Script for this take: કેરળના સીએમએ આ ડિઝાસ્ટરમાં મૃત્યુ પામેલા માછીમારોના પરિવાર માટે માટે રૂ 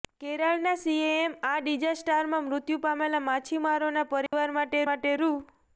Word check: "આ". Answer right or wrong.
right